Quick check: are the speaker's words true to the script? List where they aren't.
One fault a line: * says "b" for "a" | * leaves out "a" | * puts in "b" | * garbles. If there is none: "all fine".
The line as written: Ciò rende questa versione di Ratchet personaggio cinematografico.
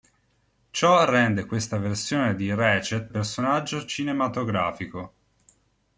all fine